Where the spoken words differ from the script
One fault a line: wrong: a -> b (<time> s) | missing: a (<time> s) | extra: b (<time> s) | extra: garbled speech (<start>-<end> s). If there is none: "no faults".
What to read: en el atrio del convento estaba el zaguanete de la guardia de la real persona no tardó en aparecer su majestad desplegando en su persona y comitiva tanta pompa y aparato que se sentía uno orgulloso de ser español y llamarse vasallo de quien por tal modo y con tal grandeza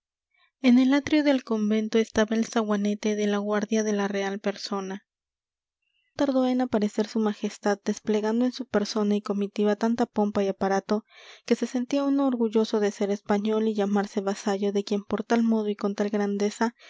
missing: no (5.0 s)